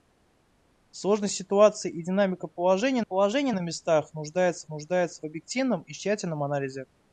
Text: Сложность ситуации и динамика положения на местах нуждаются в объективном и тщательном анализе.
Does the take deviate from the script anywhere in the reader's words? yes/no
yes